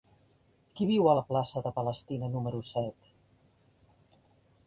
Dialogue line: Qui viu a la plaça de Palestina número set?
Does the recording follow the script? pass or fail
pass